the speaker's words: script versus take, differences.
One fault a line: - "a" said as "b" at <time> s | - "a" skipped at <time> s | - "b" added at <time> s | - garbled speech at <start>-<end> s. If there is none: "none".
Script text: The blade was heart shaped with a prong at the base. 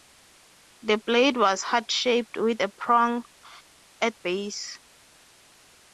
- "the" skipped at 4.1 s